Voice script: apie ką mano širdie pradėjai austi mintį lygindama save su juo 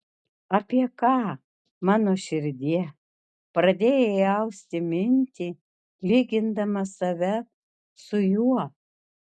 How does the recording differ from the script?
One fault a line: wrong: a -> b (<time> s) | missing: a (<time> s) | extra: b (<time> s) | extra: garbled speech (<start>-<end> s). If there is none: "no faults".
no faults